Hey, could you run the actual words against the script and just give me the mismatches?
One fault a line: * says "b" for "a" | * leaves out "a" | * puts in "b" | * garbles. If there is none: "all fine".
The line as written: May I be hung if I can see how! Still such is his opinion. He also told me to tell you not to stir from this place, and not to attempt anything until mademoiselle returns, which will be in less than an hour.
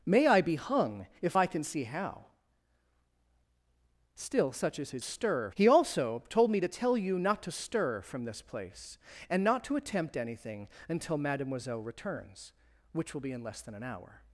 * says "stir" for "opinion"